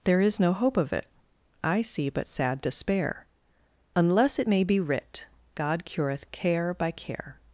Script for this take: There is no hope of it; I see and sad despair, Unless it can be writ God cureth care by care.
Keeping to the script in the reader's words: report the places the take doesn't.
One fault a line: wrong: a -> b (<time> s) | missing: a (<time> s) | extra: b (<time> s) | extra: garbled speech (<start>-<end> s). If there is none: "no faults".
wrong: and -> but (2.1 s)
wrong: can -> may (4.5 s)